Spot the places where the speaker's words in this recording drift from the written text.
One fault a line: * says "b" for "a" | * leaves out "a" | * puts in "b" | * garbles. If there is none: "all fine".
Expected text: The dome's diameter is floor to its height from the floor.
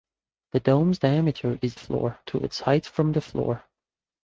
all fine